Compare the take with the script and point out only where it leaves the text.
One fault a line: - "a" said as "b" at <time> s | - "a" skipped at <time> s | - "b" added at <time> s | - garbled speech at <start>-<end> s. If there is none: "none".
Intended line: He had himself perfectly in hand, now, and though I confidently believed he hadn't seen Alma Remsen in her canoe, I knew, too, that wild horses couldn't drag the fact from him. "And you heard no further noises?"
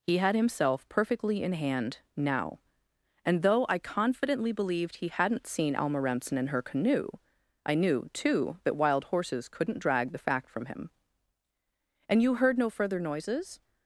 none